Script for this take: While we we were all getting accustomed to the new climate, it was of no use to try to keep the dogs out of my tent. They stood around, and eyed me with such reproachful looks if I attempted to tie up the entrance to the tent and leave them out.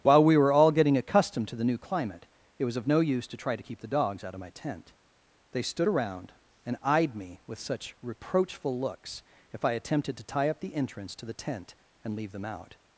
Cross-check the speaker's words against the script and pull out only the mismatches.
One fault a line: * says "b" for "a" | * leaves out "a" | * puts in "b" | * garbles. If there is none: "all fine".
* leaves out "we"